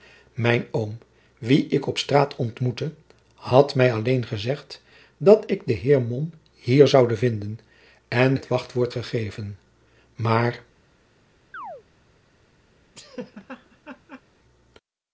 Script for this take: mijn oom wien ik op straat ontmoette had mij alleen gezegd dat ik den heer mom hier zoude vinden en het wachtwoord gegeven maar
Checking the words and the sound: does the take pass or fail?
fail